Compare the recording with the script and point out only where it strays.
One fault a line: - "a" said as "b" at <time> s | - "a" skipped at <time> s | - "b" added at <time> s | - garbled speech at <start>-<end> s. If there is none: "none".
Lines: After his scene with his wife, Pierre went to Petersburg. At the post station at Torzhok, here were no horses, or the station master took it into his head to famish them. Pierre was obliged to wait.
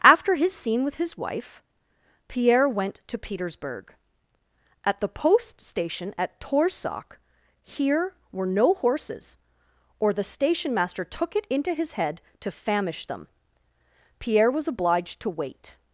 none